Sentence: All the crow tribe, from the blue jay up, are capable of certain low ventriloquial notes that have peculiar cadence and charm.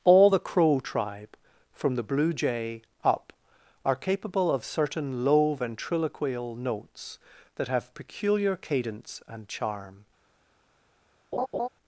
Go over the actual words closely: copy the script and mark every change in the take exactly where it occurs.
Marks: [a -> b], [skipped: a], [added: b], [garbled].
All the crow tribe, from the blue jay up, are capable of certain low ventriloquial notes that have peculiar cadence and charm.